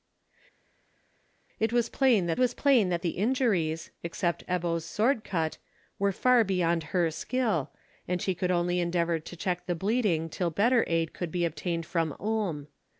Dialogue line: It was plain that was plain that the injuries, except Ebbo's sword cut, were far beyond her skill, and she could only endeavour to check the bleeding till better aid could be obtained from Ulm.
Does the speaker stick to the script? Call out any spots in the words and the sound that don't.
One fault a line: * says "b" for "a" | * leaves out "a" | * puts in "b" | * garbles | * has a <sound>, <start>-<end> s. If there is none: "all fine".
all fine